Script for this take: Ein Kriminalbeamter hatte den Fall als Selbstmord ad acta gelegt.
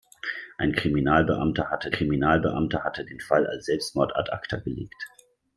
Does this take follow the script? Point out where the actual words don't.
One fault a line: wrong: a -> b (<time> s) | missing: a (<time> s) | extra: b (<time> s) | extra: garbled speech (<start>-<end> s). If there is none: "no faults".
extra: Kriminalbeamter hatte (1.9 s)